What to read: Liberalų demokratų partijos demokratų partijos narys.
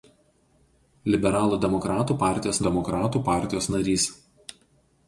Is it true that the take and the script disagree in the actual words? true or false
false